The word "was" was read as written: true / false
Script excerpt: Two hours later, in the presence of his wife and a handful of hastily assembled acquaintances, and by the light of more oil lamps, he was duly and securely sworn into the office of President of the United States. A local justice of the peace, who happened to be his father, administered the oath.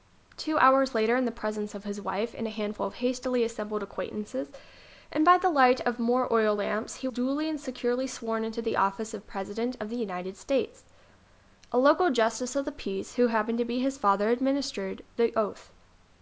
false